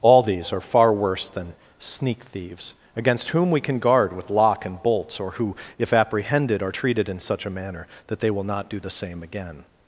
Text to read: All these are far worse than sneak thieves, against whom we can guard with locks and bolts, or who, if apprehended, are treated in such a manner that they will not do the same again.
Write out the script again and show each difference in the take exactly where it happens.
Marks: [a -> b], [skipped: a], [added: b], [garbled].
All these are far worse than sneak thieves, against whom we can guard with [locks -> lock] and bolts, or who, if apprehended, are treated in such a manner that they will not do the same again.